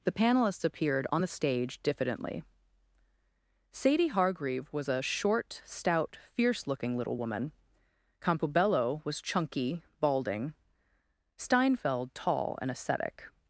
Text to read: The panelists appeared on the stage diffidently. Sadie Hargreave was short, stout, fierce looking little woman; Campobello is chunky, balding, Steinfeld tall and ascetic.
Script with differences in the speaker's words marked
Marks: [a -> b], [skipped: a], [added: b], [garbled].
The panelists appeared on the stage diffidently. Sadie Hargreave was [added: a] short, stout, fierce looking little woman; Campobello [is -> was] chunky, balding, Steinfeld tall and ascetic.